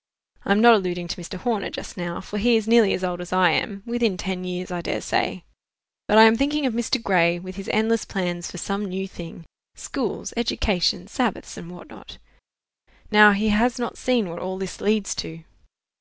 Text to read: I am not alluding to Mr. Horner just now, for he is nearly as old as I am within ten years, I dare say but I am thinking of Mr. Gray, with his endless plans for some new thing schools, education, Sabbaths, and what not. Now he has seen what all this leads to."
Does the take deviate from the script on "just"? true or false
false